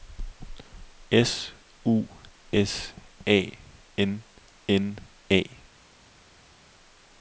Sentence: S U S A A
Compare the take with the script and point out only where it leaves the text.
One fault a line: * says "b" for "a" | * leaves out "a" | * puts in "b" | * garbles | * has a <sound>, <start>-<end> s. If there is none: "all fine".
* puts in "N N"